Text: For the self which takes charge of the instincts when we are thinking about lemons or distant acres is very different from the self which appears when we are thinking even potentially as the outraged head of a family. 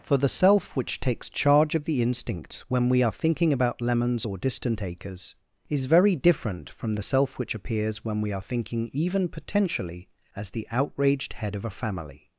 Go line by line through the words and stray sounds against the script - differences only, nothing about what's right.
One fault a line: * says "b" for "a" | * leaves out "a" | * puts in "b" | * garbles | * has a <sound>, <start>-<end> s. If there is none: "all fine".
* says "instinct" for "instincts"